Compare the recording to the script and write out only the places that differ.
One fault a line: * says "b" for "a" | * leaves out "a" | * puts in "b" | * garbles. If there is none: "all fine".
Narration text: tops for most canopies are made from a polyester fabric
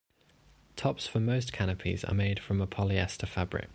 all fine